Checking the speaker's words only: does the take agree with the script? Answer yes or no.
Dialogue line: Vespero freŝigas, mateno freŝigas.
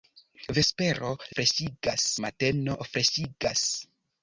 yes